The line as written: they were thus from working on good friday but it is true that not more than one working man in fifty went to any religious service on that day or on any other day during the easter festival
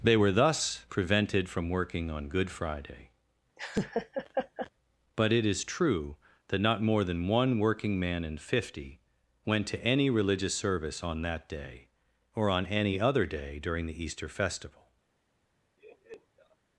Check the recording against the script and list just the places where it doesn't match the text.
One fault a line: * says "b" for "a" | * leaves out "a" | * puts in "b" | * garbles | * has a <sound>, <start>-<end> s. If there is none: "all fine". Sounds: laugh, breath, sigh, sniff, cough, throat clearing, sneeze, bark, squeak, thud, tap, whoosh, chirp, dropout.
* puts in "prevented"
* has a laugh, 3.6-4.7 s
* has a laugh, 15.8-16.6 s